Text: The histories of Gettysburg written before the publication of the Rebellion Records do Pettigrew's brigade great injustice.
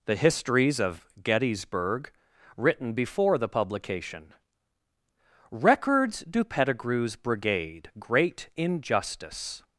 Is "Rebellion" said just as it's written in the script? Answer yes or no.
no